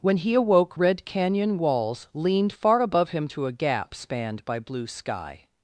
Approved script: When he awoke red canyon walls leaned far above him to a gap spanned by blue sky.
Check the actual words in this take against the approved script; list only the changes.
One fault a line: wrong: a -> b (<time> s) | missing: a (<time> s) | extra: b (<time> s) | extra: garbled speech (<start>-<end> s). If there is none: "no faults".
no faults